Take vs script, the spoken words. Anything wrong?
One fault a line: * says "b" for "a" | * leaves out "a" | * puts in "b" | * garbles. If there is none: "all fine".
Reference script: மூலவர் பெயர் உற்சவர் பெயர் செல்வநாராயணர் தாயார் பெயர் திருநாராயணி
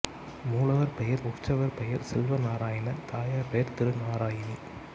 all fine